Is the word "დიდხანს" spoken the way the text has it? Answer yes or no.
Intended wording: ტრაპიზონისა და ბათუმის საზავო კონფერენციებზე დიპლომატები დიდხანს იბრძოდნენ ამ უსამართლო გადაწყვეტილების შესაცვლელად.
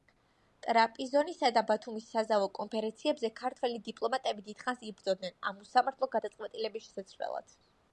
yes